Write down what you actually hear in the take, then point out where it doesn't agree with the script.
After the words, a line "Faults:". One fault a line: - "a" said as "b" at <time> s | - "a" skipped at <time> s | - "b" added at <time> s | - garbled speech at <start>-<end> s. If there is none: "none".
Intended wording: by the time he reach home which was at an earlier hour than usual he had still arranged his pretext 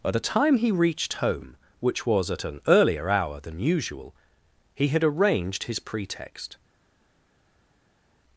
by the time he reached home which was at an earlier hour than usual he had arranged his pretext
Faults:
- "reach" said as "reached" at 0.7 s
- "still" skipped at 5.0 s